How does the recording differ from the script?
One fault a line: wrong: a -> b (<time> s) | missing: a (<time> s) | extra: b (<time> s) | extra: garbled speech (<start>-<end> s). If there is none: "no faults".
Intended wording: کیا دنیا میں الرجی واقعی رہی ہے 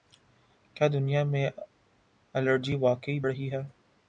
no faults